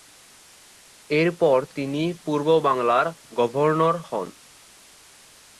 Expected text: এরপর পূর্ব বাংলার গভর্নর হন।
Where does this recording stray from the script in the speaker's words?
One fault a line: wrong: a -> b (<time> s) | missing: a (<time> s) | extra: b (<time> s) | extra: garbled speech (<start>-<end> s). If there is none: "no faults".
extra: তিনি (1.8 s)